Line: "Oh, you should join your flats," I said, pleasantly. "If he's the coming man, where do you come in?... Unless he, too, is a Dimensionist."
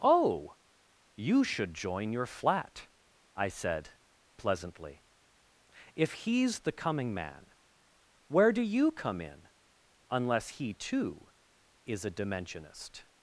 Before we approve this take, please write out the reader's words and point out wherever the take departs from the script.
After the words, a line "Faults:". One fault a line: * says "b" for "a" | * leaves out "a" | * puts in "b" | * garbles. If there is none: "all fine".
"Oh, you should join your flat," I said, pleasantly. "If he's the coming man, where do you come in?... Unless he, too, is a Dimensionist."
Faults:
* says "flat" for "flats"